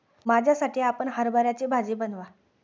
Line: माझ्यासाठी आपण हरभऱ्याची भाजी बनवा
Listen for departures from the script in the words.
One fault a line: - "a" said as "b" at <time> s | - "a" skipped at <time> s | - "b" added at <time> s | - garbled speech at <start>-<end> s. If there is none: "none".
none